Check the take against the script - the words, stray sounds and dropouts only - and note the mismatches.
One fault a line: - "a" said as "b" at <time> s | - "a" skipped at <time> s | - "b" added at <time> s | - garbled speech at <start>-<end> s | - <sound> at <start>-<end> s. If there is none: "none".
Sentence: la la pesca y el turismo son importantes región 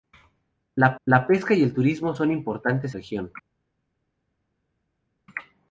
none